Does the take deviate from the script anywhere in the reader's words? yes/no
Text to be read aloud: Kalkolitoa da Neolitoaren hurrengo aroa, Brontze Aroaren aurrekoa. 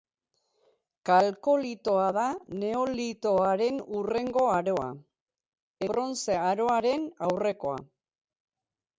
no